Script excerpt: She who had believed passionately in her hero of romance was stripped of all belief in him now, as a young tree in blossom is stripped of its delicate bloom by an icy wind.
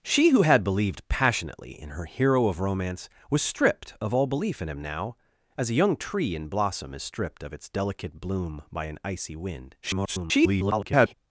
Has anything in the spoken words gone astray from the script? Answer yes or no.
yes